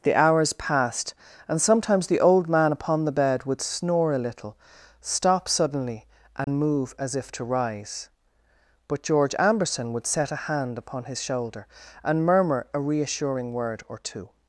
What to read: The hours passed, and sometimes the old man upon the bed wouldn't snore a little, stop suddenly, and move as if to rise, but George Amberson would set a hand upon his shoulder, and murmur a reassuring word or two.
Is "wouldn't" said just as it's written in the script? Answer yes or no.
no